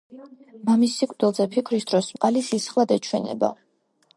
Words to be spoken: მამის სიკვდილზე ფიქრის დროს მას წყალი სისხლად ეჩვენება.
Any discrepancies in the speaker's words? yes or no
yes